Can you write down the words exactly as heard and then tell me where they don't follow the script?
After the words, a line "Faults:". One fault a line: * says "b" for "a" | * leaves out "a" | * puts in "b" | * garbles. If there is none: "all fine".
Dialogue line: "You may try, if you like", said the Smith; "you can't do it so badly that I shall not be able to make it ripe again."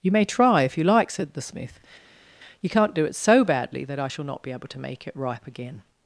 "You may try, if you like", said the Smith; "you can't do it so badly that I shall not be able to make it ripe again."
Faults:
all fine